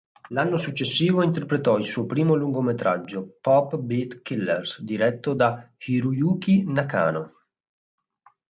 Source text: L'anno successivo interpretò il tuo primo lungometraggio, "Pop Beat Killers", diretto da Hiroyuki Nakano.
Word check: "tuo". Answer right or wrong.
wrong